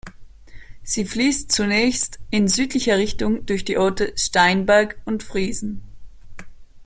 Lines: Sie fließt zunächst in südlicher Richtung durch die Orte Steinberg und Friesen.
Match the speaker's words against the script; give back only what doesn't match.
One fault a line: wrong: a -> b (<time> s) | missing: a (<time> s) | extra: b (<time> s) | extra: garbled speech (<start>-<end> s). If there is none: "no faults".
no faults